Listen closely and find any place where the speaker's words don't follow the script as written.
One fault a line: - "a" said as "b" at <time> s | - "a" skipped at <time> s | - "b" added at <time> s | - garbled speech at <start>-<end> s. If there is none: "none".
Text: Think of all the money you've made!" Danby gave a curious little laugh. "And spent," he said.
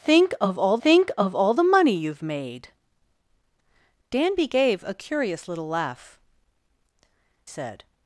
- "think of all" added at 0.8 s
- "And spent he" skipped at 6.2 s